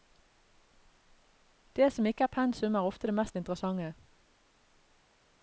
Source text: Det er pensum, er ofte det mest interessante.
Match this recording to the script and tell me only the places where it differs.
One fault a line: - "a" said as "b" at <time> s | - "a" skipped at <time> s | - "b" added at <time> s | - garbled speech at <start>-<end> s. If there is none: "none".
- "som ikke" added at 1.9 s